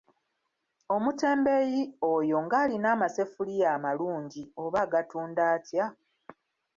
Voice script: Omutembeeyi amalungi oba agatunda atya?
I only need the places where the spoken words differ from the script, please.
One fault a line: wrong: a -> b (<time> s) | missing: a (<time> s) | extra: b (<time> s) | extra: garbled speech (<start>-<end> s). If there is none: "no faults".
extra: oyo ng'alina amaseffuliya (2.1 s)